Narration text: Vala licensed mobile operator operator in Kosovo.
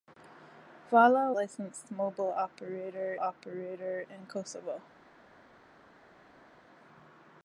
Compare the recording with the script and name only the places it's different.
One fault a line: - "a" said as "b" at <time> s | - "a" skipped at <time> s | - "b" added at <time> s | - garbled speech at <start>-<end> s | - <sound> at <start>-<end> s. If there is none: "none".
none